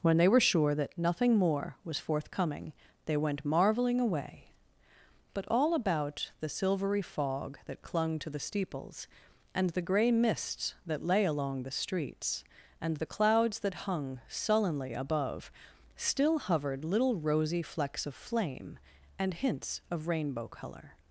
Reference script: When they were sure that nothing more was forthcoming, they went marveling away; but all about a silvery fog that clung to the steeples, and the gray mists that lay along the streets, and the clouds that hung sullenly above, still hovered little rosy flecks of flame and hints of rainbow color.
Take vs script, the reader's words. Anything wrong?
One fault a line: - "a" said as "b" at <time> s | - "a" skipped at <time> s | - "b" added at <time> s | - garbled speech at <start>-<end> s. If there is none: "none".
- "a" said as "the" at 6.4 s